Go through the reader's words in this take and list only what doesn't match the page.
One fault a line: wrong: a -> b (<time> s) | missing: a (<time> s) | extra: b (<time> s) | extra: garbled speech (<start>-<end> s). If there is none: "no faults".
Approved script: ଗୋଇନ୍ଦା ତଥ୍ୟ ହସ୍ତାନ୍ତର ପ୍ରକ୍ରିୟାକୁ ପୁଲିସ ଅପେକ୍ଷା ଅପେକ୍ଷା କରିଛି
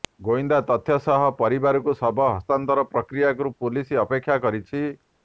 extra: ସହ ପରିବାରକୁ ଶବ (1.0 s)
missing: ଅପେକ୍ଷା (4.4 s)